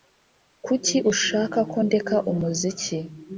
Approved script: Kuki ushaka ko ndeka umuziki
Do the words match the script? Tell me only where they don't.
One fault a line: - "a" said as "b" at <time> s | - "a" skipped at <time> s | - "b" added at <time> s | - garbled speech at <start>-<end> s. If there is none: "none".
none